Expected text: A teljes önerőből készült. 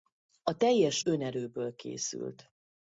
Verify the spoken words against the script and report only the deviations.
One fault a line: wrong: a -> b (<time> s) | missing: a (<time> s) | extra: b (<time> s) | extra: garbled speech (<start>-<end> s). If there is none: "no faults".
no faults